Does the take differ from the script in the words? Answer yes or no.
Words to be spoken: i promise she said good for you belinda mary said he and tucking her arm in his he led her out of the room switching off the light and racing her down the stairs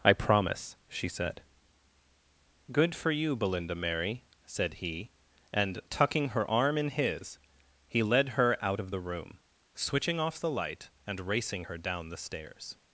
no